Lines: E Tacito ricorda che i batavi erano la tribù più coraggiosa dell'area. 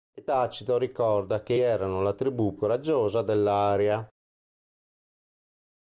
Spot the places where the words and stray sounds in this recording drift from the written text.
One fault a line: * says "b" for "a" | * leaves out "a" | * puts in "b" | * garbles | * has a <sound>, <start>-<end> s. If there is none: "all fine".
* leaves out "i batavi"
* leaves out "più"